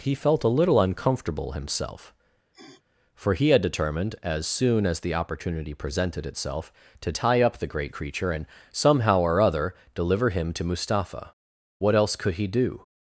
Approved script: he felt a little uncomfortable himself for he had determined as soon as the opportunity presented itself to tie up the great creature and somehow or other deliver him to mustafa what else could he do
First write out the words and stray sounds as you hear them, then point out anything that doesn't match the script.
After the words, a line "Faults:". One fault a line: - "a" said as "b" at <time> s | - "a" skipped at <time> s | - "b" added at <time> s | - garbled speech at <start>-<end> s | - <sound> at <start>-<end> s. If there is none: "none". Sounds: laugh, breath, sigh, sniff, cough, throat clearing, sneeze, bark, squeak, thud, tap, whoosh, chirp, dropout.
he felt a little uncomfortable himself for he had determined as soon as the opportunity presented itself to tie up the great creature and somehow or other deliver him to mustafa what else could he do
Faults:
- sniff at 2.5-2.8 s